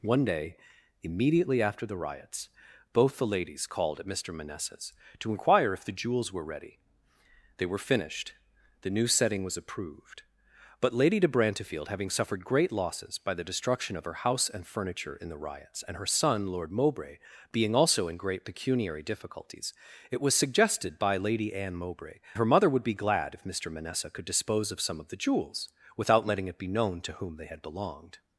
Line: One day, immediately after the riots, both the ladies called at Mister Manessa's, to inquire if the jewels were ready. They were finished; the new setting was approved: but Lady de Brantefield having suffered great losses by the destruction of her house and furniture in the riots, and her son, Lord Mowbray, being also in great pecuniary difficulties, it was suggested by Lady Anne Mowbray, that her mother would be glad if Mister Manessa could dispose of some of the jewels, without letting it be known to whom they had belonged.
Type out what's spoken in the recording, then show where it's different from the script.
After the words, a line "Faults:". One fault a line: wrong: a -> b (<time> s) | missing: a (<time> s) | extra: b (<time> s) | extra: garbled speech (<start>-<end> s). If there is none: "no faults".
One day, immediately after the riots, both the ladies called at Mister Manessa's, to inquire if the jewels were ready. They were finished; the new setting was approved: but Lady de Brantefield having suffered great losses by the destruction of her house and furniture in the riots, and her son, Lord Mowbray, being also in great pecuniary difficulties, it was suggested by Lady Anne Mowbray, her mother would be glad if Mister Manessa could dispose of some of the jewels, without letting it be known to whom they had belonged.
Faults:
missing: that (22.2 s)